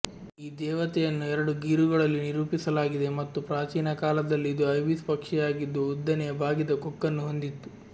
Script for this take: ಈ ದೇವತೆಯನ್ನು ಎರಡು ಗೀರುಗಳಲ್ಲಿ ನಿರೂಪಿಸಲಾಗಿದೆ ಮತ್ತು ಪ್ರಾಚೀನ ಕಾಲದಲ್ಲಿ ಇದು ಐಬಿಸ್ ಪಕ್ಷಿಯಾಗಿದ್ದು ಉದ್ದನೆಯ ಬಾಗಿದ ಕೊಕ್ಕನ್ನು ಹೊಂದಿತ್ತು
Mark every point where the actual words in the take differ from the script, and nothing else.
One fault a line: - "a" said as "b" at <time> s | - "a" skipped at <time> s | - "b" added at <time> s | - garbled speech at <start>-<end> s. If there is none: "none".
none